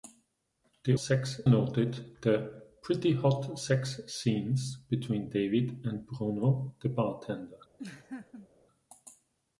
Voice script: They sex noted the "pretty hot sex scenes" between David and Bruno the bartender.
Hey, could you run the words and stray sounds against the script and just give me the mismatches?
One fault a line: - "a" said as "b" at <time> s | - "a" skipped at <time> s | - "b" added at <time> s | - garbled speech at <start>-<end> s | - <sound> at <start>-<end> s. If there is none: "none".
- laugh at 7.8-8.5 s